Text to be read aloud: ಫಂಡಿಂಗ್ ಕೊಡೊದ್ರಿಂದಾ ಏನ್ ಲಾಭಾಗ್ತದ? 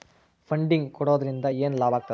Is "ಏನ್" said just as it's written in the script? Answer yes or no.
yes